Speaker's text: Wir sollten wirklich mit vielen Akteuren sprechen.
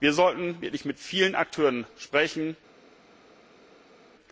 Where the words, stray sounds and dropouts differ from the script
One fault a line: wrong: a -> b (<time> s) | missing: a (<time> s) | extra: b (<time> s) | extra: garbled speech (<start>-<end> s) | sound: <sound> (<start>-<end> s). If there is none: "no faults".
no faults